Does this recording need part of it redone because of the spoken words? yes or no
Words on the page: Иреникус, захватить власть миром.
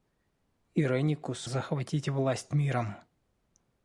no